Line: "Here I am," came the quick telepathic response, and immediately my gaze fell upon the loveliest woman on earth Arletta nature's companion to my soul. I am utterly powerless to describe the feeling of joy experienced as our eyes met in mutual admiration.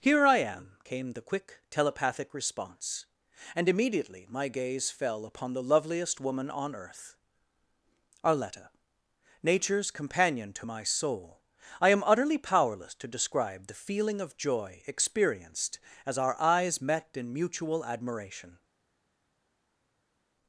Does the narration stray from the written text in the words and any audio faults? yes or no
no